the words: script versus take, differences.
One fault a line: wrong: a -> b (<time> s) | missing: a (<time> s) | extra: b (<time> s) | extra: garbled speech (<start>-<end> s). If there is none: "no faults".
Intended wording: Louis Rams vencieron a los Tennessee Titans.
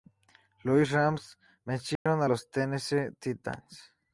no faults